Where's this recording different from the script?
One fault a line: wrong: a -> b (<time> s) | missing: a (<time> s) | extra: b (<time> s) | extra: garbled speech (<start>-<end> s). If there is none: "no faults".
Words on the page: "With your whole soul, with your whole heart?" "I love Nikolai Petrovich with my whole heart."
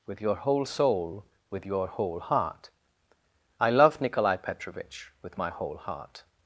no faults